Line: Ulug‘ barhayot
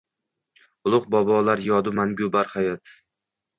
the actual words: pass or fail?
fail